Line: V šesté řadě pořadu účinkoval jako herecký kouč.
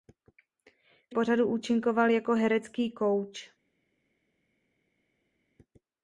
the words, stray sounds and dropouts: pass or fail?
fail